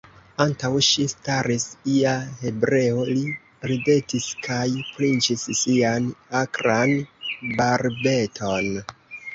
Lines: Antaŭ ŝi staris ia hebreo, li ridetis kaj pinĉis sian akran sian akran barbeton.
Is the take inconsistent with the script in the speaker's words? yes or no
yes